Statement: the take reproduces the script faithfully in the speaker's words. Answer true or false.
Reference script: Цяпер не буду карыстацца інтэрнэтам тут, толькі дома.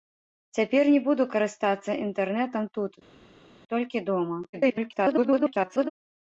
false